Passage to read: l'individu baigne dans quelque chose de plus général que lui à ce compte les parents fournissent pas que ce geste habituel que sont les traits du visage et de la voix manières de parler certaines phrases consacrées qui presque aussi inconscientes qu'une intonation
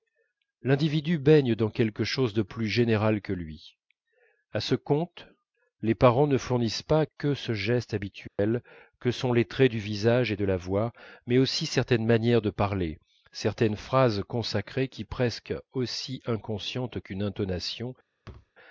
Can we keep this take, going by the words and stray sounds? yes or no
no